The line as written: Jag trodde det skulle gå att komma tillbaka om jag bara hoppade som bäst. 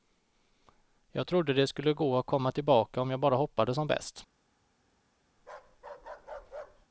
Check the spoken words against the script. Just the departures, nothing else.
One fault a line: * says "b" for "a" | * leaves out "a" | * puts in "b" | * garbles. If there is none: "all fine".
all fine